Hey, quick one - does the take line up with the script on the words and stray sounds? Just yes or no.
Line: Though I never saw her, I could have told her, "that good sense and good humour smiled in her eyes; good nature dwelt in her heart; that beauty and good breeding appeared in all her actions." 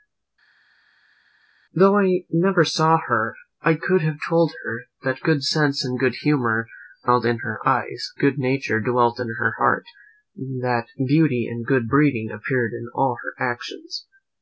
yes